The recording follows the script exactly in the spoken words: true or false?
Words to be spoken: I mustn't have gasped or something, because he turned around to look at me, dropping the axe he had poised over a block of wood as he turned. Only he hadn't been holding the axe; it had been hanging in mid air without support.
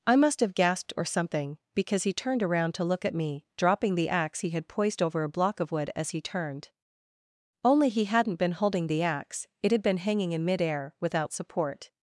false